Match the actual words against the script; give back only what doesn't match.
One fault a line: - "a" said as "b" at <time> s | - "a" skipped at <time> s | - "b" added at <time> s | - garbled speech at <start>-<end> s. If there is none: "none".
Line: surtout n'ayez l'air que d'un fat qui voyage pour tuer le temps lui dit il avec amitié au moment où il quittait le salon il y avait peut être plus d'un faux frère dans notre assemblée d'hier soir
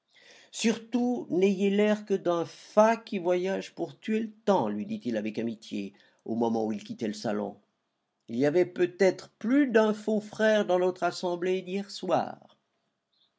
none